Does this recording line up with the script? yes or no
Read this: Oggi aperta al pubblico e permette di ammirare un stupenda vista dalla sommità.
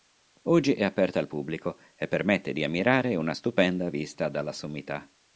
no